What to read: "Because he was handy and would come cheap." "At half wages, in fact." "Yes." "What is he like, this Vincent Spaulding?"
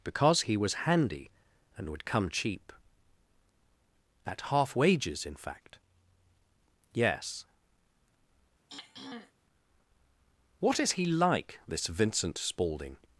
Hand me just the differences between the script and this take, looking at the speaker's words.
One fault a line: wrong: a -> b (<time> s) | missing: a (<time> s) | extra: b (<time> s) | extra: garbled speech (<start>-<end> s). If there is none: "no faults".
no faults